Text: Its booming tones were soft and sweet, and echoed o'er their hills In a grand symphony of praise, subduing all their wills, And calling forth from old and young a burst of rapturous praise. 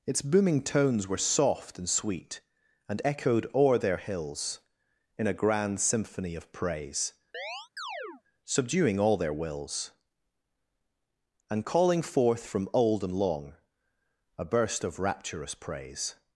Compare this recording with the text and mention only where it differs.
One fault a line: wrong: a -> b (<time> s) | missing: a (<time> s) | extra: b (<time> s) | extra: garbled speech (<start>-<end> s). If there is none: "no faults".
wrong: young -> long (13.1 s)